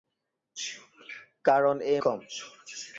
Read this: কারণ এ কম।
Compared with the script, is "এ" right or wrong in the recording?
right